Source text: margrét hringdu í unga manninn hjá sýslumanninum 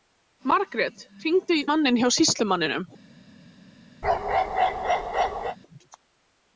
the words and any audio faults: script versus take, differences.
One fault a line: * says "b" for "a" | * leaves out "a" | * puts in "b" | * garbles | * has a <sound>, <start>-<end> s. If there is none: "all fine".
* leaves out "unga"
* has a bark, 4.0-5.6 s